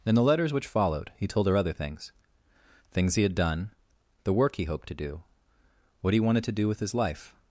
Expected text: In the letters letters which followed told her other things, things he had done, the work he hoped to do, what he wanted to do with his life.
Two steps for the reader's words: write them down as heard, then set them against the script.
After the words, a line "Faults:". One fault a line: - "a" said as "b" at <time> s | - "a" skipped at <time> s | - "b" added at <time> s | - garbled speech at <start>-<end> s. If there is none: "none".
In the letters which followed he told her other things, things he had done, the work he hoped to do, what he wanted to do with his life.
Faults:
- "letters" skipped at 0.5 s
- "he" added at 1.1 s